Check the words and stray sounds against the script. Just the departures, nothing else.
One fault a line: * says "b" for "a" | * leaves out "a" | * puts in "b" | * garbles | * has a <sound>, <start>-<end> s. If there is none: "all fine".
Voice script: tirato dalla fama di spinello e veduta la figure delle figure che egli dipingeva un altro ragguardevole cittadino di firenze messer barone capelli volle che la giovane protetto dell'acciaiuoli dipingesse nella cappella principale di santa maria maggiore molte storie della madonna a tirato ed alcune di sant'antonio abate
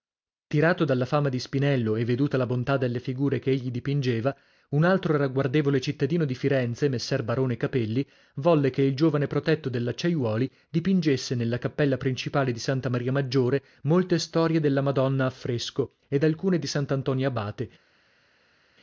* says "bontà" for "figure"
* says "il" for "la"
* says "fresco" for "tirato"